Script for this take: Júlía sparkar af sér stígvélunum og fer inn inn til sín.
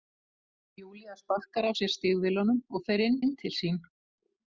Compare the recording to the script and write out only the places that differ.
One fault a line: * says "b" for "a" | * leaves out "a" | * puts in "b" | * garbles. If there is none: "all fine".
all fine